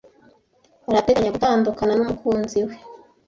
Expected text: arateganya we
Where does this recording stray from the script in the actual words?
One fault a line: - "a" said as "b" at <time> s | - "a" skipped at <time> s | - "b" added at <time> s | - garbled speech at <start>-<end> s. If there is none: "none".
- "gutandukana numukunzi" added at 1.3 s